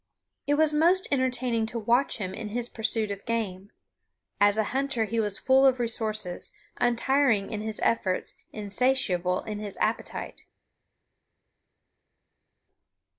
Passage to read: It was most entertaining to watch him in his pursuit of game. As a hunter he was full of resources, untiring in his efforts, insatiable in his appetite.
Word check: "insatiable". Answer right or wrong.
right